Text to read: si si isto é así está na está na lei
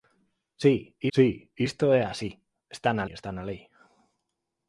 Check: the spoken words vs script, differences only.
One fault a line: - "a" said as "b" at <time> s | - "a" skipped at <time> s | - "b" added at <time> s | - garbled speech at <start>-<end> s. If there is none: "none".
none